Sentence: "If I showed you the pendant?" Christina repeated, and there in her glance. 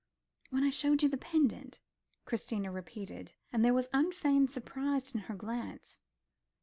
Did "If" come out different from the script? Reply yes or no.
yes